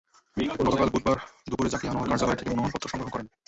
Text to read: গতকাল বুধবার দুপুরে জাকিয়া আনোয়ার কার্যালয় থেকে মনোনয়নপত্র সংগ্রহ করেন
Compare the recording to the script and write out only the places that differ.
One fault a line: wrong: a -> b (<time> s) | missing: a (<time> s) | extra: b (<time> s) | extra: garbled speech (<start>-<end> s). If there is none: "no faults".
no faults